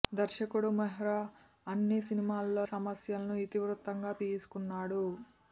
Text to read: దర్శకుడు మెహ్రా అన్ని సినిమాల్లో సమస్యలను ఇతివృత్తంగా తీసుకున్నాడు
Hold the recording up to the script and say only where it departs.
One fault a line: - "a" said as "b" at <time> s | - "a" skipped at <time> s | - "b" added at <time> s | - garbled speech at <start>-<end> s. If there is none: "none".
none